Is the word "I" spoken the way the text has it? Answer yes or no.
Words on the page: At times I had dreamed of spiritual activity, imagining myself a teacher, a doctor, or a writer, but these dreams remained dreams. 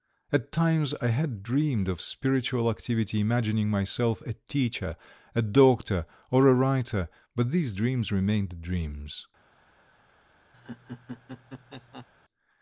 yes